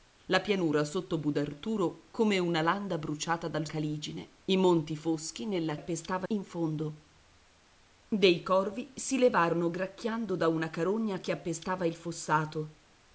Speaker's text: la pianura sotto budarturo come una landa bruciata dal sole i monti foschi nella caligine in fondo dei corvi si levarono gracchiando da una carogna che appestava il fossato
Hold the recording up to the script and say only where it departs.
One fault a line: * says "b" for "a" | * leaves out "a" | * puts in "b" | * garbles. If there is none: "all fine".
* says "caligine" for "sole"
* says "appestava" for "caligine"